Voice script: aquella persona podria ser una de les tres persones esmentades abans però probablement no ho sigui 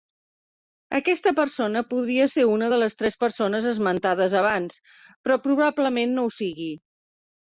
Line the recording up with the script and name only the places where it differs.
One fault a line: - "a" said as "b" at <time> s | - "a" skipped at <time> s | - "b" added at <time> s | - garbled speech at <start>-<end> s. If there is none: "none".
- "aquella" said as "aquesta" at 1.0 s